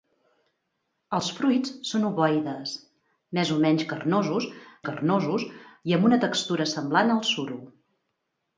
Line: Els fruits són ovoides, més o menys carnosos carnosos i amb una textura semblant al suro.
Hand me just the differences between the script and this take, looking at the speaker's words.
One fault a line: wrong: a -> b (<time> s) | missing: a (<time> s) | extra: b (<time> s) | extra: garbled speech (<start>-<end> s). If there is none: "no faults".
no faults